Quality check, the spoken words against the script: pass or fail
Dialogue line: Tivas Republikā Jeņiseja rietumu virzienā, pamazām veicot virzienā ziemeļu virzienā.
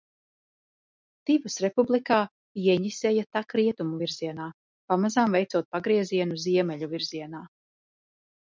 fail